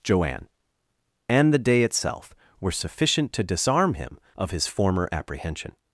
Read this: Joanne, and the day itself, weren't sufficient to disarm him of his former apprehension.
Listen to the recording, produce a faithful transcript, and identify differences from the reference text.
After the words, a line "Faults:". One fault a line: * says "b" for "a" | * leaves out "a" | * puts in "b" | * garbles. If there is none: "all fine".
Joanne, and the day itself, were sufficient to disarm him of his former apprehension.
Faults:
* says "were" for "weren't"